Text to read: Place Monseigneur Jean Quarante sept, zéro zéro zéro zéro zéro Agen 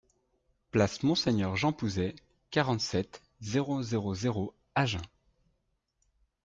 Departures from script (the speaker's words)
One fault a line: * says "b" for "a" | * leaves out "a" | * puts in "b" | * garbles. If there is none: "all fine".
* puts in "Pouzet"
* leaves out "zéro zéro"